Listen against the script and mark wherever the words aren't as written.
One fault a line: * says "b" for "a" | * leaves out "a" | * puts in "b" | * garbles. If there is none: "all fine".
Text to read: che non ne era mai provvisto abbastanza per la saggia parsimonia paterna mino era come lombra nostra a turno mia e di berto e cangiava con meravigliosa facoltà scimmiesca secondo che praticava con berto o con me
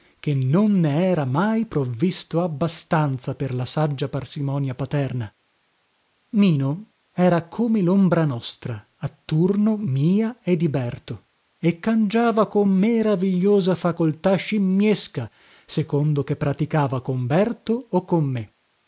all fine